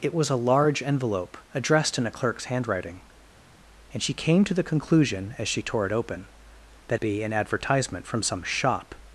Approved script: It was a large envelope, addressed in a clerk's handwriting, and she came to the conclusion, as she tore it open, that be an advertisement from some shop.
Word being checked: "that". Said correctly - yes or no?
yes